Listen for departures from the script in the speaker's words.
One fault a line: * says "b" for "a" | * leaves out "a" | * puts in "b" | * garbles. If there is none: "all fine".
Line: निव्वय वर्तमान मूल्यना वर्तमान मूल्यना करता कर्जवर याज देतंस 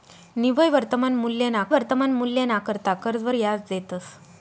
all fine